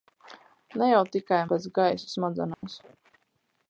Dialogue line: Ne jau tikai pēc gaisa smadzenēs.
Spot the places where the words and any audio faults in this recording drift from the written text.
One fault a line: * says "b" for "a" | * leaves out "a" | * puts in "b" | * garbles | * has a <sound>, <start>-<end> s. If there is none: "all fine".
* has a dropout, 2.5-2.6 s